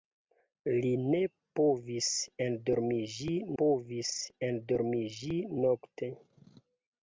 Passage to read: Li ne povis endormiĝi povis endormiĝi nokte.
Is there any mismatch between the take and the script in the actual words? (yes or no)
no